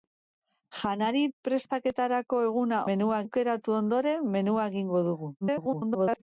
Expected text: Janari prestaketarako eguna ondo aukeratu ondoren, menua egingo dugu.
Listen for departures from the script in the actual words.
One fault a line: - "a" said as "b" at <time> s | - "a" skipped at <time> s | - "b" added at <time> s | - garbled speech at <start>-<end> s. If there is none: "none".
- "ondo" said as "menua" at 2.9 s
- garbled speech at 5.4-6.2 s